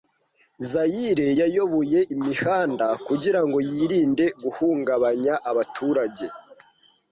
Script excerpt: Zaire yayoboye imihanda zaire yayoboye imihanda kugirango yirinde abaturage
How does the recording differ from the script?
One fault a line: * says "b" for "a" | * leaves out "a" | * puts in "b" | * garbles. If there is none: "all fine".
* leaves out "zaire yayoboye imihanda"
* puts in "guhungabanya"